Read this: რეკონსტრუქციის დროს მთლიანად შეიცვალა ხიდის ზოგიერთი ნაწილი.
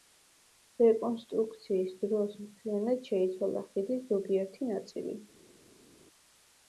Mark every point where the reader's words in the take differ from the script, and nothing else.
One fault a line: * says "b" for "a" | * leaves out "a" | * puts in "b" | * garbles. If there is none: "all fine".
all fine